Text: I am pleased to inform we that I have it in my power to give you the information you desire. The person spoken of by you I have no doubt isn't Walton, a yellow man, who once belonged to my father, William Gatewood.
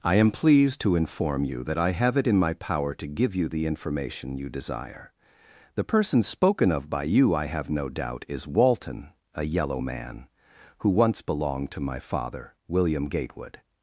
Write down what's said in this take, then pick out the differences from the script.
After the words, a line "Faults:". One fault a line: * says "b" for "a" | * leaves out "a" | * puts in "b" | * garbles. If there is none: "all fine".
I am pleased to inform you that I have it in my power to give you the information you desire. The person spoken of by you I have no doubt is Walton, a yellow man, who once belonged to my father, William Gatewood.
Faults:
* says "you" for "we"
* says "is" for "isn't"